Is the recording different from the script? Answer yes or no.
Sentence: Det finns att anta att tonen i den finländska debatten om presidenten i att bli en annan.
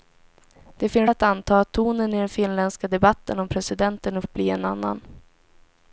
no